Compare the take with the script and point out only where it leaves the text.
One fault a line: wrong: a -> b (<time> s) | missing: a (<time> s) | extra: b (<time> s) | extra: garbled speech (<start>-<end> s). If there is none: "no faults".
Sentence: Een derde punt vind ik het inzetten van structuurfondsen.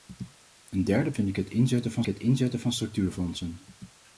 missing: punt (1.1 s)
extra: het inzetten van (2.0 s)